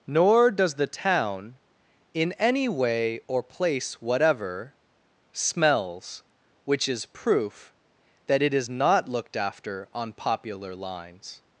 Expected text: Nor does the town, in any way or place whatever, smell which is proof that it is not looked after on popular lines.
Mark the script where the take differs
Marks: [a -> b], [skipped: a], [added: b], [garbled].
Nor does the town, in any way or place whatever, [smell -> smells] which is proof that it is not looked after on popular lines.